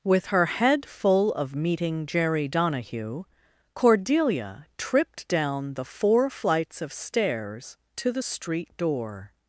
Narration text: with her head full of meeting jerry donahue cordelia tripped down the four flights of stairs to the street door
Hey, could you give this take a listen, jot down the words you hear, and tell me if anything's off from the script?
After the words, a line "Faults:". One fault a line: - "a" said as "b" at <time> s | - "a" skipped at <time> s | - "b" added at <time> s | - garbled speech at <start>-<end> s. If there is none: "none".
with her head full of meeting jerry donahue cordelia tripped down the four flights of stairs to the street door
Faults:
none